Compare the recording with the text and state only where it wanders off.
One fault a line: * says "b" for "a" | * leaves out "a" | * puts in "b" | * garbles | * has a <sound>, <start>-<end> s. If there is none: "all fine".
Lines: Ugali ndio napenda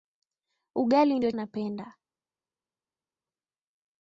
all fine